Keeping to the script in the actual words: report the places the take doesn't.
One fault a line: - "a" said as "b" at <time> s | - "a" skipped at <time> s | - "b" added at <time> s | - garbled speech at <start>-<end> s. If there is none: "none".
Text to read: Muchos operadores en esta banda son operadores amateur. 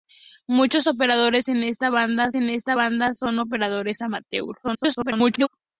- "en esta banda" added at 2.3 s
- garbled speech at 4.6-5.5 s